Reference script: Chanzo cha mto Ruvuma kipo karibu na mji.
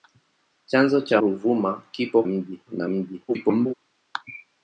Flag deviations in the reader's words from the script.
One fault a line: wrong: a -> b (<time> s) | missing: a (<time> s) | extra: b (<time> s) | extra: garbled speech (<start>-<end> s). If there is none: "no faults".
missing: mto (1.2 s)
wrong: karibu -> mji (2.3 s)
extra: garbled speech (3.3-3.7 s)